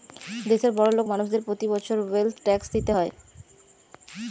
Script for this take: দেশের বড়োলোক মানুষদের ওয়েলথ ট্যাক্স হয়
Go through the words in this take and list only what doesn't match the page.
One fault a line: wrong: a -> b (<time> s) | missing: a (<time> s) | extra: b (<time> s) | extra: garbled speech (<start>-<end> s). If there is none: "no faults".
extra: প্রতি বছর (1.5 s)
extra: দিতে (2.7 s)